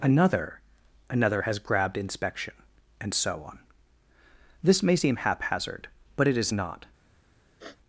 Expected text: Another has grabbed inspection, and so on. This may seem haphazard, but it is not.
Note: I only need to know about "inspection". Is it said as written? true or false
true